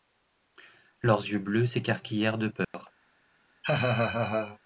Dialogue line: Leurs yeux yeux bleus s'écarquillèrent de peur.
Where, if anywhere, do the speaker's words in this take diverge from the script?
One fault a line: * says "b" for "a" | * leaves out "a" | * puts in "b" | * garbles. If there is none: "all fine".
* leaves out "yeux"